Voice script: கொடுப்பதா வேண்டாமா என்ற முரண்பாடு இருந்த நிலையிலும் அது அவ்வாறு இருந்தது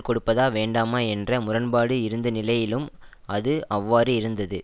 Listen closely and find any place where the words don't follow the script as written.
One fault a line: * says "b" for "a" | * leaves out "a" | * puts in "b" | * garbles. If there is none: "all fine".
all fine